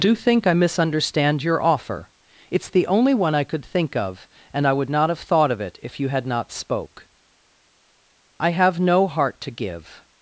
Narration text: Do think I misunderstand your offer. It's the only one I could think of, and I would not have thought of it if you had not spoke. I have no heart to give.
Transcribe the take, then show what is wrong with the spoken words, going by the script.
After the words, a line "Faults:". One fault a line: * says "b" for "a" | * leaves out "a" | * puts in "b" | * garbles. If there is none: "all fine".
Do think I misunderstand your offer. It's the only one I could think of, and I would not have thought of it if you had not spoke. I have no heart to give.
Faults:
all fine